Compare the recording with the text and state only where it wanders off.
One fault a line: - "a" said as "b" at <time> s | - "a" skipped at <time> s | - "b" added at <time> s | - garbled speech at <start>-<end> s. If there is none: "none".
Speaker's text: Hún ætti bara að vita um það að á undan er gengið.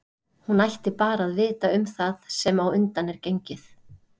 - "að" said as "sem" at 2.4 s